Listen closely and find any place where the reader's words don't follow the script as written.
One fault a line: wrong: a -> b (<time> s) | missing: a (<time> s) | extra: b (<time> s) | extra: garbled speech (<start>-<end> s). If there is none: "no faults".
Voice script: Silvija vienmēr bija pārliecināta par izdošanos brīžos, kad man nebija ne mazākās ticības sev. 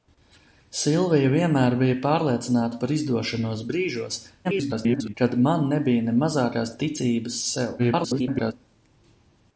extra: garbled speech (4.4-5.1 s)
extra: garbled speech (7.8-8.5 s)